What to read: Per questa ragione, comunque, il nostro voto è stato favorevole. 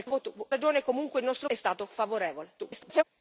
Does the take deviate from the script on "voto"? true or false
true